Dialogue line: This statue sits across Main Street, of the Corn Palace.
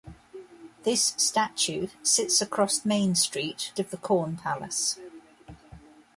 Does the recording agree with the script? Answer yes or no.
yes